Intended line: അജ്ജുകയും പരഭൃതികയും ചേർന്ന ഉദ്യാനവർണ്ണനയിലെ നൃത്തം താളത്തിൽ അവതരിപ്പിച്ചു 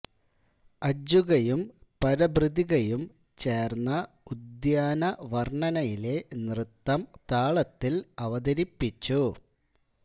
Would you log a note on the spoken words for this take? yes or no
no